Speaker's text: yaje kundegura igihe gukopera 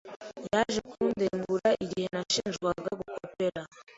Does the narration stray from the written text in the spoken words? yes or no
yes